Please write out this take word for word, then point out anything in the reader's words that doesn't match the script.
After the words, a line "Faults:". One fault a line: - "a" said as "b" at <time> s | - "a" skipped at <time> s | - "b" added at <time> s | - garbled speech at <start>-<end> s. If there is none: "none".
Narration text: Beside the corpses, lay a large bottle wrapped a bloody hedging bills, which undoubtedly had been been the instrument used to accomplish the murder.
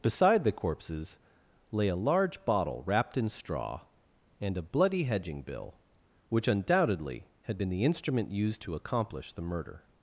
Beside the corpses, lay a large bottle wrapped in straw, and a bloody hedging bill, which undoubtedly had been the instrument used to accomplish the murder.
Faults:
- "in straw and" added at 3.2 s
- "bills" said as "bill" at 5.4 s
- "been" skipped at 7.7 s